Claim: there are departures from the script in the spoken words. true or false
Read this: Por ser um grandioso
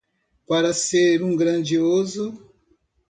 true